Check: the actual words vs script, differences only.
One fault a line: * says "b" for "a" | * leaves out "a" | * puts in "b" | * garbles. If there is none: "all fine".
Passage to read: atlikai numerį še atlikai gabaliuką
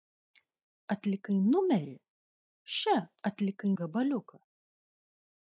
all fine